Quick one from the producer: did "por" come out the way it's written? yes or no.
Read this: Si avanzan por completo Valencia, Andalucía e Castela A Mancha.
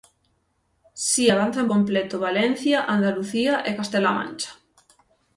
no